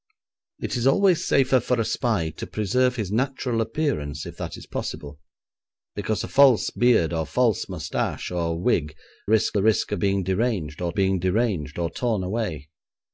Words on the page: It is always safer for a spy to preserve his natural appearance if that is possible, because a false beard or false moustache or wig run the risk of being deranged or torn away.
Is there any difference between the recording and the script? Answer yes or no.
yes